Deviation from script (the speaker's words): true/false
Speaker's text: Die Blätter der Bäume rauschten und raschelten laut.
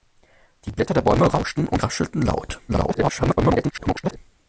true